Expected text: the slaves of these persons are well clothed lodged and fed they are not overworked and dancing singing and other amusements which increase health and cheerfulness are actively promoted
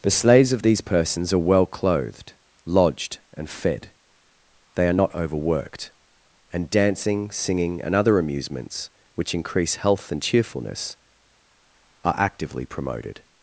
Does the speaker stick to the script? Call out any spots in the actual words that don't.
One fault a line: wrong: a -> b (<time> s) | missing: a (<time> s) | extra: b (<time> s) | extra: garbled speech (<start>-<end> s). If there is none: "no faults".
no faults